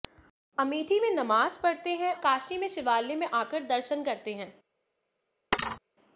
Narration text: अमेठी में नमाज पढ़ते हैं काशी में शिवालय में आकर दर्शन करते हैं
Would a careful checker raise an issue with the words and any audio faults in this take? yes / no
yes